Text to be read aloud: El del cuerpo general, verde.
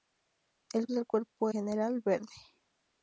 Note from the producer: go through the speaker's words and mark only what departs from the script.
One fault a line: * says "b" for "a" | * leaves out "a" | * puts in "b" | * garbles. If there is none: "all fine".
all fine